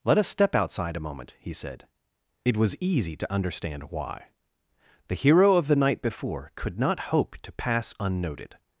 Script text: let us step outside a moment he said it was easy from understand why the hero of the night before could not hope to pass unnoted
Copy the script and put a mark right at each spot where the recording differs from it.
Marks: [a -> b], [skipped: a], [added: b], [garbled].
let us step outside a moment he said it was easy [from -> to] understand why the hero of the night before could not hope to pass unnoted